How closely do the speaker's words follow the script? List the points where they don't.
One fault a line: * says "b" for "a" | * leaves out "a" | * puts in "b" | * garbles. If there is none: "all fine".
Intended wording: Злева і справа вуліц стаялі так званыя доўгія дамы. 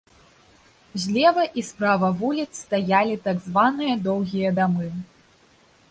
all fine